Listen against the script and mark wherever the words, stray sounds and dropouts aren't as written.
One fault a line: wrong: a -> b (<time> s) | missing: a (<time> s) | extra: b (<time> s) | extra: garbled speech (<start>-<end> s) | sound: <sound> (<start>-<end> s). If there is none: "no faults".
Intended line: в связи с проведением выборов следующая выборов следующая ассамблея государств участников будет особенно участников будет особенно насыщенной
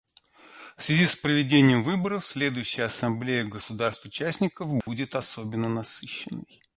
missing: выборов следующая (2.9 s)
sound: dropout (4.8-4.9 s)
missing: участников будет особенно (5.7 s)